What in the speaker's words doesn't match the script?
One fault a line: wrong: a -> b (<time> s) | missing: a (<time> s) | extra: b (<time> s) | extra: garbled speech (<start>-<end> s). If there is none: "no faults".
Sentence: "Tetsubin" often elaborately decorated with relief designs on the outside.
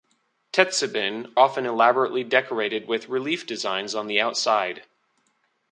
no faults